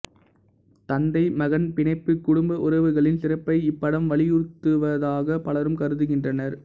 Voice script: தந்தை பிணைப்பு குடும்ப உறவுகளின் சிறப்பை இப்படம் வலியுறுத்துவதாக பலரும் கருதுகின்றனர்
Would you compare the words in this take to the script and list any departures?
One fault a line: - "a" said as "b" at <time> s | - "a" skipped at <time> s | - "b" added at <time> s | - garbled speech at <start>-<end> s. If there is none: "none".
- "மகன்" added at 1.4 s